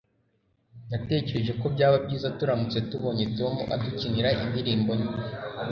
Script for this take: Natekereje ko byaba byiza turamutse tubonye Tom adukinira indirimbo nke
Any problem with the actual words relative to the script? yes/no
no